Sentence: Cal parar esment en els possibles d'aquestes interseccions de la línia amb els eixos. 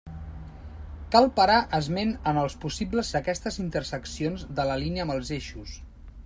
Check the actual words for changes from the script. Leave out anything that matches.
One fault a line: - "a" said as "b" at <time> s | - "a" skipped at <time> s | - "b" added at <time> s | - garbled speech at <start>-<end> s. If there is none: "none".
none